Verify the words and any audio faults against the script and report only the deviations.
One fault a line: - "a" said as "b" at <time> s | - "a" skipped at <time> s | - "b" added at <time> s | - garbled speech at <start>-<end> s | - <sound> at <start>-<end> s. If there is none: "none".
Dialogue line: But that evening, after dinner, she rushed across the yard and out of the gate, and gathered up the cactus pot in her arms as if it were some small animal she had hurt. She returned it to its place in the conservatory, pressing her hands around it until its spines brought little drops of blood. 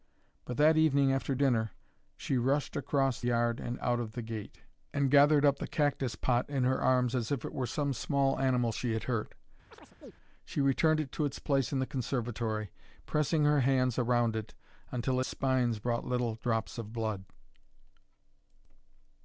- "the" skipped at 3.2 s
- chirp at 9.7-10.1 s
- "its" skipped at 15.2 s